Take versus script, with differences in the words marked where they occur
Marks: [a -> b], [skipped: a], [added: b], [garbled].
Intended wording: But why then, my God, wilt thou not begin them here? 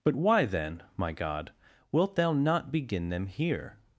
But why then, my God, wilt thou not begin them here?